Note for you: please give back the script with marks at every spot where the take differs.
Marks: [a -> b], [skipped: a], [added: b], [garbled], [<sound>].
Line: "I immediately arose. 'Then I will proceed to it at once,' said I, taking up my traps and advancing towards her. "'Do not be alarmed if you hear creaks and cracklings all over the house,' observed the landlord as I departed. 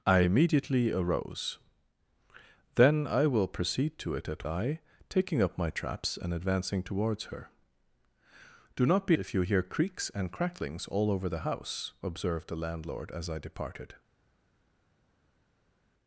"I immediately arose. 'Then I will proceed to it at [skipped: once,' said] I, taking up my traps and advancing towards her. "'Do not be [skipped: alarmed] if you hear creaks and cracklings all over the house,' observed the landlord as I departed.